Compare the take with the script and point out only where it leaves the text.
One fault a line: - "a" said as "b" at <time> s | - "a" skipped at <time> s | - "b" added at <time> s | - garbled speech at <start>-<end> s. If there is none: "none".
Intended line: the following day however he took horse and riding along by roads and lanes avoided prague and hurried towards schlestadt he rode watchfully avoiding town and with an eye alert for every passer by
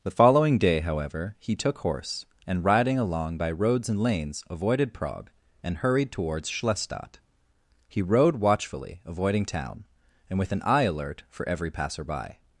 none